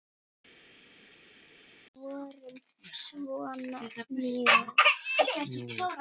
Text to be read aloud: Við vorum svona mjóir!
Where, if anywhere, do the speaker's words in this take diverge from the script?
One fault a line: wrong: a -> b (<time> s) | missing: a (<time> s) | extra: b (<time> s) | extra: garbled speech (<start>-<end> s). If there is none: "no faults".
no faults